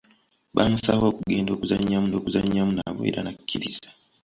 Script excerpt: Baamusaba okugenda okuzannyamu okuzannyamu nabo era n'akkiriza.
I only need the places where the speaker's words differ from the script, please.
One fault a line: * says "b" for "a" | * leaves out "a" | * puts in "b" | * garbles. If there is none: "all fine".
all fine